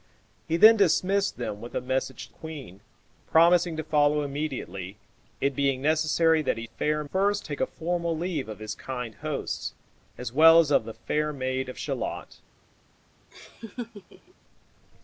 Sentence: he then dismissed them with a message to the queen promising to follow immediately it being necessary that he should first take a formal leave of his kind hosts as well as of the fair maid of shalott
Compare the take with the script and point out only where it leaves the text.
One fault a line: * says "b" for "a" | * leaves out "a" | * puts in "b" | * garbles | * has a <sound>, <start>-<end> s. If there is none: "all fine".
* leaves out "to the"
* says "fair" for "should"
* has a laugh, 13.3-14.3 s